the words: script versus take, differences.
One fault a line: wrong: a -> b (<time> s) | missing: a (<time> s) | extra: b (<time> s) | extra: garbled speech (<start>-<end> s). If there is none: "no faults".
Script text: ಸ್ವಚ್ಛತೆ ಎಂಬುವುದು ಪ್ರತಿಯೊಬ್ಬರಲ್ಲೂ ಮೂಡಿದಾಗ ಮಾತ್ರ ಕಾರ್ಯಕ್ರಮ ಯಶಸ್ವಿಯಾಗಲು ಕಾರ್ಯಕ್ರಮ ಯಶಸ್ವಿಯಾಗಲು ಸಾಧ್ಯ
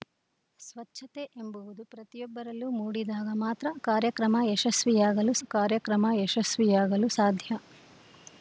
no faults